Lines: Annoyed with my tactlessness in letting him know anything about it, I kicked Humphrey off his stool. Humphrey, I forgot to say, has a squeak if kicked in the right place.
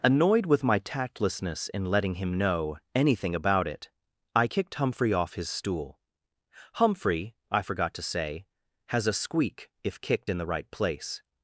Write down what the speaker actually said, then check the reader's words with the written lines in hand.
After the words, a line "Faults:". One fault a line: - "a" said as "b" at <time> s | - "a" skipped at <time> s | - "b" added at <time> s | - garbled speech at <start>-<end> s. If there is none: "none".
Annoyed with my tactlessness in letting him know anything about it, I kicked Humphrey off his stool. Humphrey, I forgot to say, has a squeak if kicked in the right place.
Faults:
none